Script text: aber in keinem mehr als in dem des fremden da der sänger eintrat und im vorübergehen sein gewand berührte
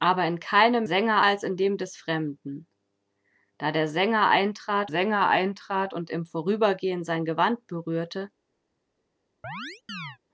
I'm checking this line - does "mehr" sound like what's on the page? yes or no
no